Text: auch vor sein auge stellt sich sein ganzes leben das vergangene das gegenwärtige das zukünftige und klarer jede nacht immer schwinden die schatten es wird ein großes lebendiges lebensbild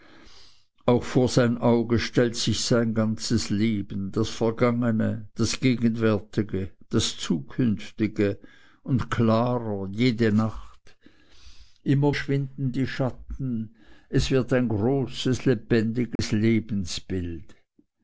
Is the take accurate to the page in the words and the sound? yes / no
no